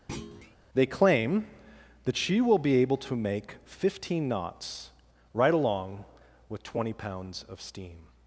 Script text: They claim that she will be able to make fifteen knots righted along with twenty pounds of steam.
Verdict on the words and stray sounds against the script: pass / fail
fail